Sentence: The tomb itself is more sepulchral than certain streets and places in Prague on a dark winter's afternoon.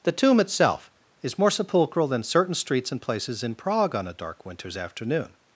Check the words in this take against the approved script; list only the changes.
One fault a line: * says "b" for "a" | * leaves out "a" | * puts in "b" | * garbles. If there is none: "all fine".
all fine